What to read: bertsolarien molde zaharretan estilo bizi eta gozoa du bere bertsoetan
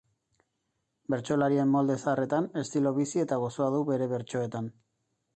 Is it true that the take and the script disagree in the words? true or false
false